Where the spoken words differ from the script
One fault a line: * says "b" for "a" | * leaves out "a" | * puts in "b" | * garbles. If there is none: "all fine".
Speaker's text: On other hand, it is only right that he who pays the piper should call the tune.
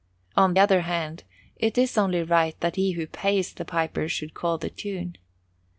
all fine